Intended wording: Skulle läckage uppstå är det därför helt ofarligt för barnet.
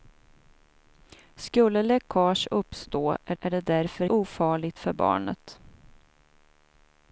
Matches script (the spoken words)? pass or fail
fail